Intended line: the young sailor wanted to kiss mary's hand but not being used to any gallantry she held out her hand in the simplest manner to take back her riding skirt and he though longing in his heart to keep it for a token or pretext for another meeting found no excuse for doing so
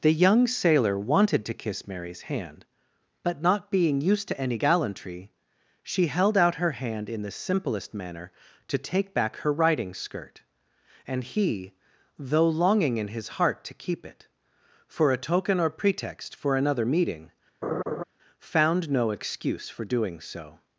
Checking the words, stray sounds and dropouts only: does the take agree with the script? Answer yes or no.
no